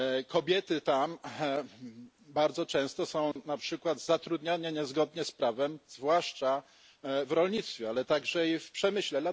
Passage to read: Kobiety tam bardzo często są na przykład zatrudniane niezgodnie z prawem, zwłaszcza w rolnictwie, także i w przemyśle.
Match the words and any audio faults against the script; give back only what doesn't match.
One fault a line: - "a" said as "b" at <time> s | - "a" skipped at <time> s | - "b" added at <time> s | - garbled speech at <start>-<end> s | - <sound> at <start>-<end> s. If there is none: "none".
- dropout at 3.3-3.4 s
- "ale" added at 7.9 s